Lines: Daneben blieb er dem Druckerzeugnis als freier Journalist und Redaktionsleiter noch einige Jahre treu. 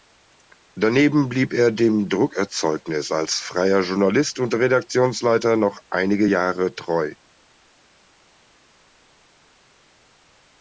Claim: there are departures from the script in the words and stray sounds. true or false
false